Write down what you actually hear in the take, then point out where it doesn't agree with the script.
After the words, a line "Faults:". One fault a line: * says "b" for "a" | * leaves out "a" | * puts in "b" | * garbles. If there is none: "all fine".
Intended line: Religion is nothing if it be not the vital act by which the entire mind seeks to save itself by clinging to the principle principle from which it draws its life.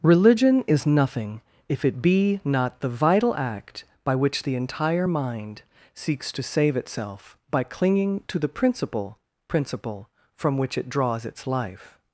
Religion is nothing if it be not the vital act by which the entire mind seeks to save itself by clinging to the principle principle from which it draws its life.
Faults:
all fine